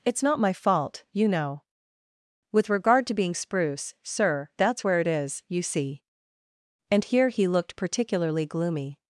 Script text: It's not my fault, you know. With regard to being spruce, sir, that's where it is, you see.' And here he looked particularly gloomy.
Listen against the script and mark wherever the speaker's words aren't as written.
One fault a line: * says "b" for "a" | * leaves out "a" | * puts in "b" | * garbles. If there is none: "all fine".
all fine